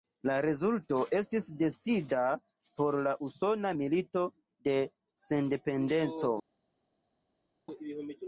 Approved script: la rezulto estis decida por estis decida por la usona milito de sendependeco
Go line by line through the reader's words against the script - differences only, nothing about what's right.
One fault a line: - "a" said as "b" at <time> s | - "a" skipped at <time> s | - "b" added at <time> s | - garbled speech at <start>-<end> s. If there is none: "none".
- "estis decida por" skipped at 3.0 s